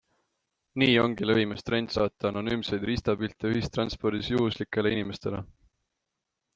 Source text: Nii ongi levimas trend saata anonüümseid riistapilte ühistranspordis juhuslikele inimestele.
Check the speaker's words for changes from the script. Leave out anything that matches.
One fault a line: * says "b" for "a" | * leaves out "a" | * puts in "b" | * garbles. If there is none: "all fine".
all fine